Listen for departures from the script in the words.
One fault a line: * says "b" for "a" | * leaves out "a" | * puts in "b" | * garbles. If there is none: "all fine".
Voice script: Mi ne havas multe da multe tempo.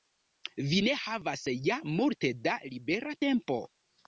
* says "Vi" for "Mi"
* puts in "ja"
* says "libera" for "multe"